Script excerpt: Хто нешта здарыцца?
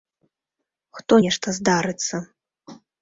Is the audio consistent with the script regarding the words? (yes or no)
yes